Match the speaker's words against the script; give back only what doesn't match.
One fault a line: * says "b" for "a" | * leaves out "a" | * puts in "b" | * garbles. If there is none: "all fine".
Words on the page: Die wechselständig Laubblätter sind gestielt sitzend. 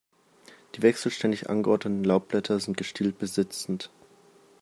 * puts in "angeordneten"
* puts in "bis"